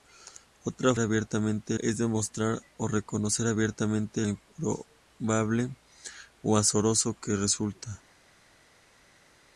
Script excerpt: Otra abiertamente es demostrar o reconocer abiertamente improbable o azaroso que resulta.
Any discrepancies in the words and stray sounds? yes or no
no